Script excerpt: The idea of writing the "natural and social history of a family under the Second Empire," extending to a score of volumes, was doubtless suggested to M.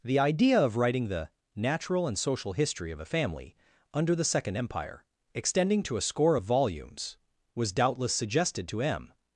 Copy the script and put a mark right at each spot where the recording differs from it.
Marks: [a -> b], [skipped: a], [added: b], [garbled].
The idea of writing the "natural and social history of a family under the Second Empire," extending to a score of volumes, was doubtless suggested to M.